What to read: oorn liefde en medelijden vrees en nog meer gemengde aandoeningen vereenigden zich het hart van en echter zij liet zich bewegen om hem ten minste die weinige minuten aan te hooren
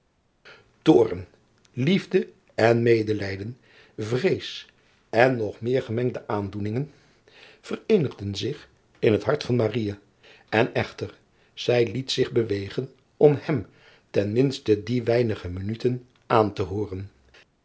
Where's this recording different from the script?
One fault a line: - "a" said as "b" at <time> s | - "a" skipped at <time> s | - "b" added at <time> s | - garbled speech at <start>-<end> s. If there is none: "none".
- "in" added at 9.0 s